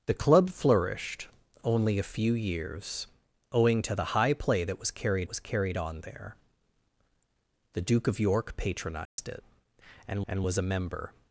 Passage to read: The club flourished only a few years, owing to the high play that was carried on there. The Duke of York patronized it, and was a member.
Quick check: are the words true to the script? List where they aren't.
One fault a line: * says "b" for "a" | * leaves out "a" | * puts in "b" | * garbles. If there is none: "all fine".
* puts in "was carried"
* puts in "and"